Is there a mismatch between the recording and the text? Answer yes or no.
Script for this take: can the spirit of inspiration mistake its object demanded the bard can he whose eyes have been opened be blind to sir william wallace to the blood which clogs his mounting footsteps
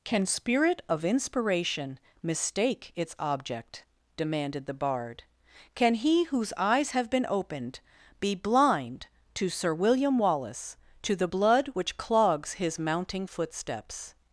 yes